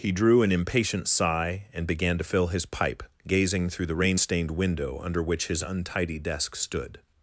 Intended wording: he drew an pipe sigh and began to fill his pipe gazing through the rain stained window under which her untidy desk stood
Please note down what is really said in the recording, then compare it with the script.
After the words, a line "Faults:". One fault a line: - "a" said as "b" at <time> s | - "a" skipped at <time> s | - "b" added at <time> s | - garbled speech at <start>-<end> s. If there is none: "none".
he drew an impatient sigh and began to fill his pipe gazing through the rain stained window under which his untidy desk stood
Faults:
- "pipe" said as "impatient" at 0.5 s
- "her" said as "his" at 5.5 s